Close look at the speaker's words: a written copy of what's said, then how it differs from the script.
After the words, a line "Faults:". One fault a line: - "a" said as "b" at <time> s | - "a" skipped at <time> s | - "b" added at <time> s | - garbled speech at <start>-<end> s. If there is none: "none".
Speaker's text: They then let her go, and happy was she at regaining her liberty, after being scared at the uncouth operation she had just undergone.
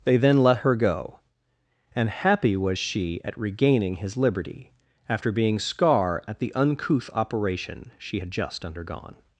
They then let her go, and happy was she at regaining his liberty, after being scar at the uncouth operation she had just undergone.
Faults:
- "her" said as "his" at 4.0 s
- "scared" said as "scar" at 5.6 s